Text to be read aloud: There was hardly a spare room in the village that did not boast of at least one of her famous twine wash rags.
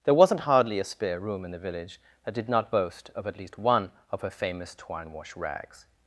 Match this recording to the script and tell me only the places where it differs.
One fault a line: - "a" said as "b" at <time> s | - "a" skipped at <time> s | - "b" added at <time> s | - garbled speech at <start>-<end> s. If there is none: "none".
- "was" said as "wasn't" at 0.1 s